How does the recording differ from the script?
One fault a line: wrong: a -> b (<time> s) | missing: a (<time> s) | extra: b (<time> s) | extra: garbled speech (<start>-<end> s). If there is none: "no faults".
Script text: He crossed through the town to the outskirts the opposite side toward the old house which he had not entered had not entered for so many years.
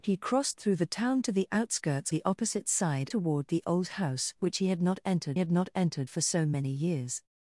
no faults